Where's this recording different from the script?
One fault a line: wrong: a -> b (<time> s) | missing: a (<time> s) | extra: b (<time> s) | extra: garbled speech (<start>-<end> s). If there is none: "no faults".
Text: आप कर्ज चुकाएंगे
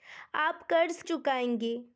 no faults